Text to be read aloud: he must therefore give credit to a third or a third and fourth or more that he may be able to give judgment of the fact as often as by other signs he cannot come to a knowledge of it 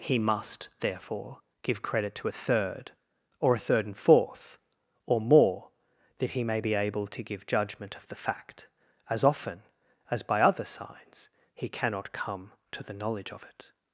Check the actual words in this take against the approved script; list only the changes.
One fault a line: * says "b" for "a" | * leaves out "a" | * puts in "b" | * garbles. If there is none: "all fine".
* says "the" for "a"